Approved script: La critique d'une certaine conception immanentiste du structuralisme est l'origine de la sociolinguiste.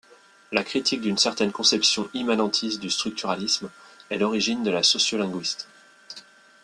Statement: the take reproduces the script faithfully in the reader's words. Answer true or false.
true